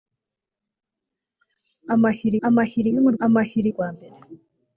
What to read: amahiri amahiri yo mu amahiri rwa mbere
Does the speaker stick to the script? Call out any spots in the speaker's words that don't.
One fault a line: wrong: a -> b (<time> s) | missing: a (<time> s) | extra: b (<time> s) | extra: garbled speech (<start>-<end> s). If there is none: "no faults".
no faults